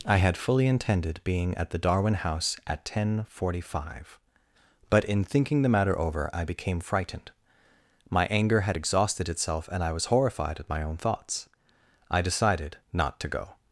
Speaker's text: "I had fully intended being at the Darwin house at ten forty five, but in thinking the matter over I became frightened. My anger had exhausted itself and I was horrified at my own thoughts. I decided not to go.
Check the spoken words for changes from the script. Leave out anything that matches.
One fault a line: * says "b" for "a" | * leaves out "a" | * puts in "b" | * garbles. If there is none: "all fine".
all fine